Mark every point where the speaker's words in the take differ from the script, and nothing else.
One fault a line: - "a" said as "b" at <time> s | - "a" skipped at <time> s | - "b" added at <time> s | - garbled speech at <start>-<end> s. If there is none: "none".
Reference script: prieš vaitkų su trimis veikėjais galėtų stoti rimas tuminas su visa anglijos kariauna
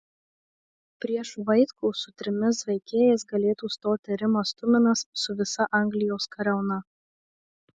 none